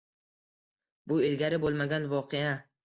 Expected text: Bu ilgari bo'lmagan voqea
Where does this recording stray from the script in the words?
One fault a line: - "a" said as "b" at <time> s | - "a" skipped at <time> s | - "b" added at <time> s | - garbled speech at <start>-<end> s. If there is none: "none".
none